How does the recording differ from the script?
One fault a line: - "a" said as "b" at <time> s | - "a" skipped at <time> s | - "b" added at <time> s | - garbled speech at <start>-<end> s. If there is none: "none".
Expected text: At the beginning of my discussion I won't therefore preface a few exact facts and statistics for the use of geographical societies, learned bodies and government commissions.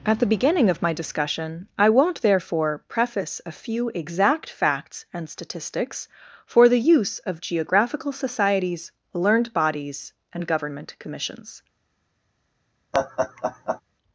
none